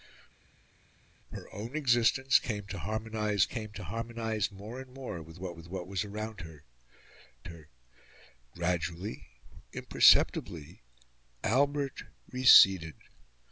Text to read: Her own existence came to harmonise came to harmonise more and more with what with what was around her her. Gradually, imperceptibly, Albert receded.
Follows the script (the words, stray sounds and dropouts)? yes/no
yes